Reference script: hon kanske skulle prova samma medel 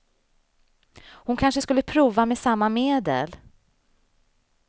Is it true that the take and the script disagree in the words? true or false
true